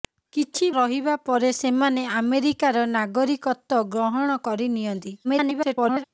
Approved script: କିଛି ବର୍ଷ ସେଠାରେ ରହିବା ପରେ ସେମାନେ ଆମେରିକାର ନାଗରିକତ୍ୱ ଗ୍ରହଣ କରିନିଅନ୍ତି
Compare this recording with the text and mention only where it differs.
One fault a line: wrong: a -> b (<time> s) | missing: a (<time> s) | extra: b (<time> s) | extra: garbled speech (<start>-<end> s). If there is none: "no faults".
missing: ବର୍ଷ ସେଠାରେ (0.7 s)
extra: garbled speech (5.2-6.0 s)